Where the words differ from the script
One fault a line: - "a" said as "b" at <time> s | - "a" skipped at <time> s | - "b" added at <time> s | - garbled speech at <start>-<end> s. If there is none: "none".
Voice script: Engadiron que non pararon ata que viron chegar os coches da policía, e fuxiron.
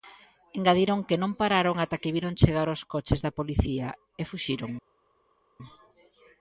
none